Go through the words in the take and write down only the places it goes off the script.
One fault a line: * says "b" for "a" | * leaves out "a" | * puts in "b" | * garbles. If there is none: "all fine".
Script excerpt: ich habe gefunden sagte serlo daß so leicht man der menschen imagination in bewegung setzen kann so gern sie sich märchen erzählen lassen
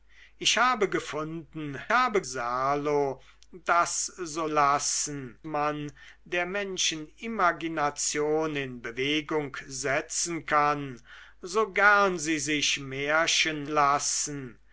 * says "habe" for "sagte"
* says "lassen" for "leicht"
* leaves out "erzählen"